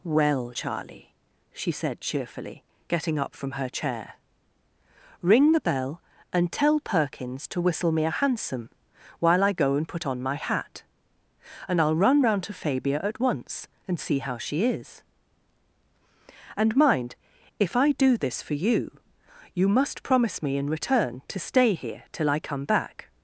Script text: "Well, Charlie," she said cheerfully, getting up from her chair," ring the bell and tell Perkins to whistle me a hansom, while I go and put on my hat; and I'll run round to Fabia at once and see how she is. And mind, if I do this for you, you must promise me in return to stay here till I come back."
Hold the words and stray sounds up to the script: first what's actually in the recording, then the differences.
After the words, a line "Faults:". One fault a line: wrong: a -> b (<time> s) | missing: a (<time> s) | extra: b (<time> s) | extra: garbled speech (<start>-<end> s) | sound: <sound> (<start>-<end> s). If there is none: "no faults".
"Well, Charlie," she said cheerfully, getting up from her chair," ring the bell and tell Perkins to whistle me a hansom, while I go and put on my hat; and I'll run round to Fabia at once and see how she is. And mind, if I do this for you, you must promise me in return to stay here till I come back."
Faults:
no faults